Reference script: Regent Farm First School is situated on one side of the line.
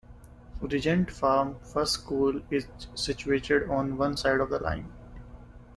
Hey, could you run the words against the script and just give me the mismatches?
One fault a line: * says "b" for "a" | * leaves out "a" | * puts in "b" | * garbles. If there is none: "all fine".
all fine